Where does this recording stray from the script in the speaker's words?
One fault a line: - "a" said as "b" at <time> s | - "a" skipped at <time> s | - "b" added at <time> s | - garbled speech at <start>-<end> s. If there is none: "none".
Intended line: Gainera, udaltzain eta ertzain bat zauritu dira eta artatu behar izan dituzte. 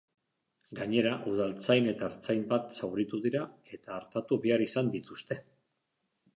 none